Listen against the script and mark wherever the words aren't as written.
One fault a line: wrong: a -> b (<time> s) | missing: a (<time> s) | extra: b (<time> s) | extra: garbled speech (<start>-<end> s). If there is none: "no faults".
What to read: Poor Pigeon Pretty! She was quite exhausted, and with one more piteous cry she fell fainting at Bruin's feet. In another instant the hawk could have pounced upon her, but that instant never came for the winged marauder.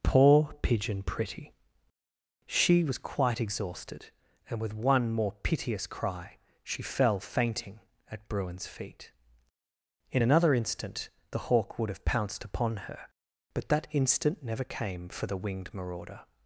wrong: could -> would (11.8 s)